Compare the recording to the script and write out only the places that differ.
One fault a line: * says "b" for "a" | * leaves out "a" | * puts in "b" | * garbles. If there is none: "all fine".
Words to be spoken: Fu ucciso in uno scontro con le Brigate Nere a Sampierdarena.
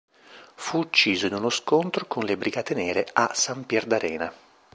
all fine